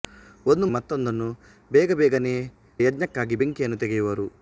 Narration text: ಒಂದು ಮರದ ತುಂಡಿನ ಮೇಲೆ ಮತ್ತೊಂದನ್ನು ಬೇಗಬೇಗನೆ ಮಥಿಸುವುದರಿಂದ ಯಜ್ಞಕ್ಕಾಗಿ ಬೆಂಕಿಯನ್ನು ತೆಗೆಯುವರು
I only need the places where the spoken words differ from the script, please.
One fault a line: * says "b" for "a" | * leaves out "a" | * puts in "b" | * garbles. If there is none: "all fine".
* leaves out "ಮರದ ತುಂಡಿನ ಮೇಲೆ"
* leaves out "ಮಥಿಸುವುದರಿಂದ"